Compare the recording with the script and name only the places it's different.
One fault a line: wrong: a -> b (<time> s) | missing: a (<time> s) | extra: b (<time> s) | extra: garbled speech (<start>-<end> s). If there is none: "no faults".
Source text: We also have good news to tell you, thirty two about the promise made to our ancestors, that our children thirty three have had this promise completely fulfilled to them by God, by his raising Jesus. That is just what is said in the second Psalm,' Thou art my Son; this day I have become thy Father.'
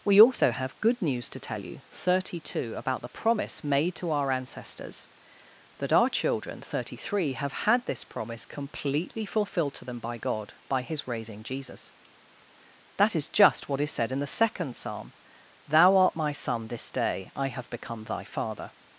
no faults